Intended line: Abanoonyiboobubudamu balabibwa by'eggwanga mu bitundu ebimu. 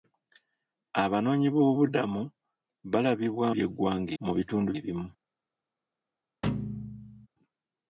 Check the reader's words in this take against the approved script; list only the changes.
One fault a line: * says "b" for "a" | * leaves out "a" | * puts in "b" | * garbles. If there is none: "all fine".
all fine